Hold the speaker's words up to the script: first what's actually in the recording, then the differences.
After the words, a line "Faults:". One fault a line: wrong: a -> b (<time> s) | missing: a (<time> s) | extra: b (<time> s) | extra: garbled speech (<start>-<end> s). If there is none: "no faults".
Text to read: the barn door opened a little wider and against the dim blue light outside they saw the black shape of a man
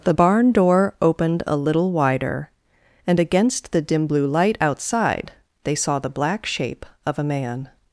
the barn door opened a little wider and against the dim blue light outside they saw the black shape of a man
Faults:
no faults